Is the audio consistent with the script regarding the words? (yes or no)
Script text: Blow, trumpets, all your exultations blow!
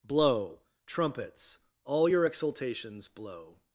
yes